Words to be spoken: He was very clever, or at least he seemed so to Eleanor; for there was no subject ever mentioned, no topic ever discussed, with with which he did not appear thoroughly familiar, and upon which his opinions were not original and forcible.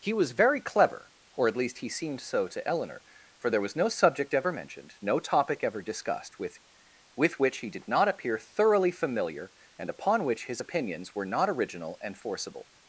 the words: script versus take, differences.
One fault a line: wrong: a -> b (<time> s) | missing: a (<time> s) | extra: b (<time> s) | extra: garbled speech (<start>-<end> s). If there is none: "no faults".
no faults